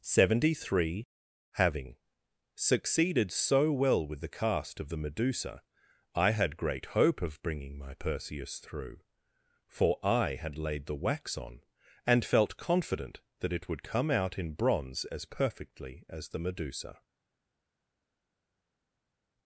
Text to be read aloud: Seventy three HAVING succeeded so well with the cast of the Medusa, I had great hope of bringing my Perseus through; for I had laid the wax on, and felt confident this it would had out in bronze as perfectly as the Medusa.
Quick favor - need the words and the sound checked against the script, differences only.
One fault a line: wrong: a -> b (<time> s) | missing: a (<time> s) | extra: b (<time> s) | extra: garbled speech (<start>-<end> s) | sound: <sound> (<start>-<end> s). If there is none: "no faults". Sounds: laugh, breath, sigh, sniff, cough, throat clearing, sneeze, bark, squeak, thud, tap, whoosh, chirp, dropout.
wrong: this -> that (13.4 s)
wrong: had -> come (13.8 s)